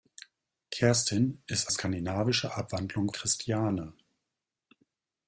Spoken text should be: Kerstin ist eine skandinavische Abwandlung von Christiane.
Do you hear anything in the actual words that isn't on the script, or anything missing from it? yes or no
yes